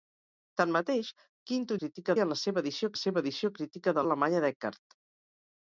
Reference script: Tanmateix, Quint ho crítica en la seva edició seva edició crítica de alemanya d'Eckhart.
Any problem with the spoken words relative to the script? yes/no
no